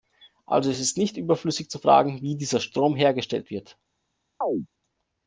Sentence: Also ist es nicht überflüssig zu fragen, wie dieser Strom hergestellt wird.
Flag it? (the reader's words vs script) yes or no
no